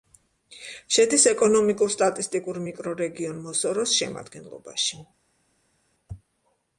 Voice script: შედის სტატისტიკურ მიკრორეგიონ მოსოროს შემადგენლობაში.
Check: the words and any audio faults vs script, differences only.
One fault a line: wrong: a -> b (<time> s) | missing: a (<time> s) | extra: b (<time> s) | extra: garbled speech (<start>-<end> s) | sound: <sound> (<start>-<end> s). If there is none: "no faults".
extra: ეკონომიკურ (1.3 s)